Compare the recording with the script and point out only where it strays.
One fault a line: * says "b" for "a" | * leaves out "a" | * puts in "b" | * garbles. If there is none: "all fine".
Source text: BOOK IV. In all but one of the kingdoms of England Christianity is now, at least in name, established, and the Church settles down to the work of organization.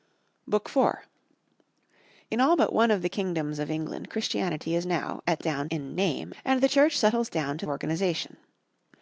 * says "down" for "least"
* leaves out "established"
* leaves out "the work of"